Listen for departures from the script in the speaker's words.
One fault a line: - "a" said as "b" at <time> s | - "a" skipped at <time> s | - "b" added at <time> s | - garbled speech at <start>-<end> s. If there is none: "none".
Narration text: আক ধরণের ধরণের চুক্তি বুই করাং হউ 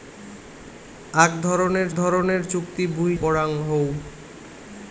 none